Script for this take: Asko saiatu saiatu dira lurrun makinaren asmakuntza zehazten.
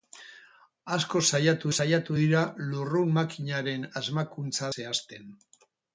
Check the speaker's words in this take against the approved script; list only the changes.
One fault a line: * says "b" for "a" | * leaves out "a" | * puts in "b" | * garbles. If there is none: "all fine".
all fine